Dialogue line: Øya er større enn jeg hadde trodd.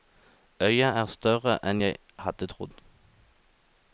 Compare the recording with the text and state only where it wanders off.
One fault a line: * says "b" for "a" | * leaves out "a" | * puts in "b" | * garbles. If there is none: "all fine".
all fine